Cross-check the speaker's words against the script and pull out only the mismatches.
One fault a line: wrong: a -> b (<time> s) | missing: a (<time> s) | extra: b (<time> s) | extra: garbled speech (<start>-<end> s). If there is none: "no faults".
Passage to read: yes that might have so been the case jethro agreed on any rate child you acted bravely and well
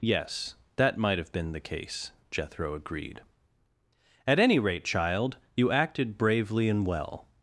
missing: so (1.3 s)
wrong: on -> at (4.3 s)